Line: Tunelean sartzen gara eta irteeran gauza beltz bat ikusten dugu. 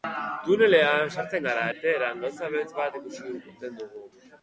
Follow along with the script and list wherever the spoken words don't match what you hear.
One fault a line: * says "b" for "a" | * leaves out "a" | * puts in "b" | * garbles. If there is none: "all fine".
* leaves out "eta"